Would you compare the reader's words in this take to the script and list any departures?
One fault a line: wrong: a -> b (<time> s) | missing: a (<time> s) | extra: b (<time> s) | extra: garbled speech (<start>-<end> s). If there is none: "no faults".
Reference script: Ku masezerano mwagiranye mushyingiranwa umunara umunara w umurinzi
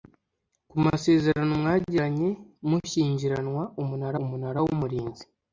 no faults